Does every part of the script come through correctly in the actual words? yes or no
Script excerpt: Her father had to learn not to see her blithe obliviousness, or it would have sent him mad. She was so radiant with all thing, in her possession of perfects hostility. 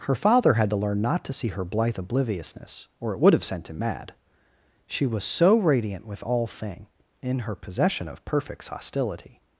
yes